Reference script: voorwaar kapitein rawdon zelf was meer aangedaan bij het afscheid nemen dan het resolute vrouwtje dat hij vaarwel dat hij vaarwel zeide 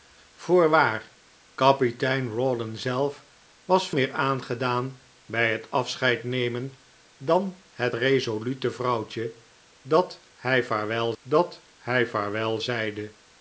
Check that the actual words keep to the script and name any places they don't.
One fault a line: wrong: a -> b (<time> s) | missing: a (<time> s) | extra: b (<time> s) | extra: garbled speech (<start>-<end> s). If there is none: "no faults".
no faults